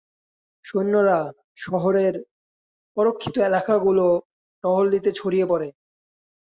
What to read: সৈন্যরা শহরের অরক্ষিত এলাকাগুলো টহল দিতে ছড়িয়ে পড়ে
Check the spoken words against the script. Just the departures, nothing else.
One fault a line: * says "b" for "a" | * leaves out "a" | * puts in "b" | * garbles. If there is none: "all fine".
all fine